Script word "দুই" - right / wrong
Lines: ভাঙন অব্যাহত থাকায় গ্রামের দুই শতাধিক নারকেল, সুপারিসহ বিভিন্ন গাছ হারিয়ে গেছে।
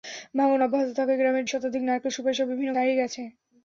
wrong